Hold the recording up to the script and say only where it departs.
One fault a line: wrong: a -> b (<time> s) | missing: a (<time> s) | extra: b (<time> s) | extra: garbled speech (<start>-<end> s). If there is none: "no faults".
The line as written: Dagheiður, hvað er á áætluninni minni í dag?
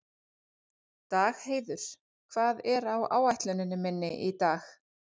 no faults